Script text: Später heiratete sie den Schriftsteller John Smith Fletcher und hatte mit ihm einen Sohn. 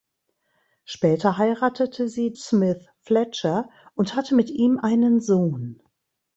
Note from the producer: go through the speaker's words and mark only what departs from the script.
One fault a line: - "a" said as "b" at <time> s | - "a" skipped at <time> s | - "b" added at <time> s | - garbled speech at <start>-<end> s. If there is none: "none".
- "den Schriftsteller John" skipped at 2.3 s